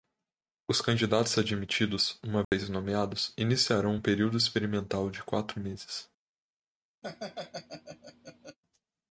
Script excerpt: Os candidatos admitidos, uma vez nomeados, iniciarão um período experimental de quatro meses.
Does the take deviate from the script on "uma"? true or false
false